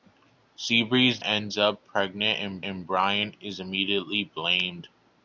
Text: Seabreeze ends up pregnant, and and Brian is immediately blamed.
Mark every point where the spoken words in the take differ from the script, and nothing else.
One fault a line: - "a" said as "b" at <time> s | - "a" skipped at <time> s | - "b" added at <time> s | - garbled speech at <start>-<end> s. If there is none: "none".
none